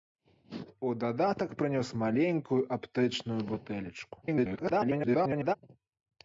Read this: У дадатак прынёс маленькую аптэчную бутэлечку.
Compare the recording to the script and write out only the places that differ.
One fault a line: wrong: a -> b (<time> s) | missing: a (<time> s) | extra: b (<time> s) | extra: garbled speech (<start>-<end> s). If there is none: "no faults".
extra: garbled speech (4.2-5.6 s)